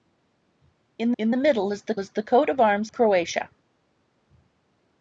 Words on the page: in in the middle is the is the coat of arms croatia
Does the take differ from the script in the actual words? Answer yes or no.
no